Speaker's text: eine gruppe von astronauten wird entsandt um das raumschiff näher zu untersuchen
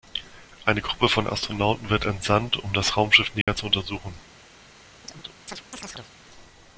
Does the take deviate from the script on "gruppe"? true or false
false